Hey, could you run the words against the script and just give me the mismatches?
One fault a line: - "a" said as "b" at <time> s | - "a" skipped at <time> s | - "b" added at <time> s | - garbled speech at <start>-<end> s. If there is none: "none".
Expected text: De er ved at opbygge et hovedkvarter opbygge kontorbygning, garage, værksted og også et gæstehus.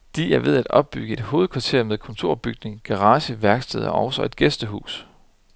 - "opbygge" said as "med" at 1.8 s